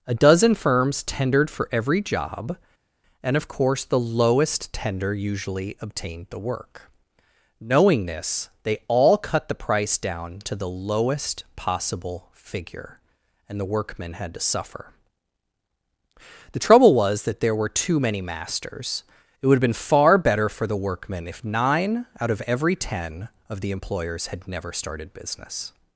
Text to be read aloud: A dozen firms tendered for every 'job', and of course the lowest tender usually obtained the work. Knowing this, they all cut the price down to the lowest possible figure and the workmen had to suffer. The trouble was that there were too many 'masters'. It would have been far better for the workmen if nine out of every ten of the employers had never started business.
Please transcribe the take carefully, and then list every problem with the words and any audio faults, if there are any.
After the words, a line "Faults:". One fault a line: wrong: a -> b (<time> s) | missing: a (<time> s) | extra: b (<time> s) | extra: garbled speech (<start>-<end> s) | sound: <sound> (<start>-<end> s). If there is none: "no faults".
A dozen firms tendered for every 'job', and of course the lowest tender usually obtained the work. Knowing this, they all cut the price down to the lowest possible figure and the workmen had to suffer. The trouble was that there were too many 'masters'. It would have been far better for the workmen if nine out of every ten of the employers had never started business.
Faults:
no faults